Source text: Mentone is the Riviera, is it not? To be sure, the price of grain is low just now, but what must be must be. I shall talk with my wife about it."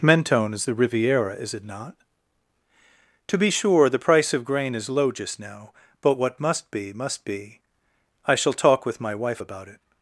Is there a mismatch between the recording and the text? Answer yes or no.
no